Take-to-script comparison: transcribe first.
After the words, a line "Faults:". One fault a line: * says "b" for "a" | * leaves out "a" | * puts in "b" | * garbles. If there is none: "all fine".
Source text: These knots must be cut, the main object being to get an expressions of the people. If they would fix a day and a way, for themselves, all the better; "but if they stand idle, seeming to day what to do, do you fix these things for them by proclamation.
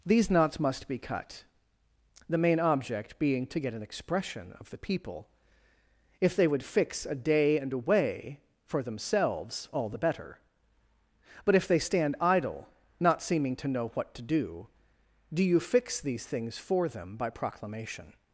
These knots must be cut, the main object being to get an expression of the people. If they would fix a day and a way, for themselves, all the better; "but if they stand idle, not seeming to know what to do, do you fix these things for them by proclamation.
Faults:
* says "expression" for "expressions"
* puts in "not"
* says "know" for "day"